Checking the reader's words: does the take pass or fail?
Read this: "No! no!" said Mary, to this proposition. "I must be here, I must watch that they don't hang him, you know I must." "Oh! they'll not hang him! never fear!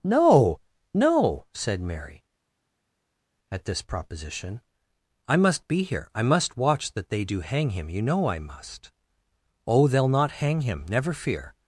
fail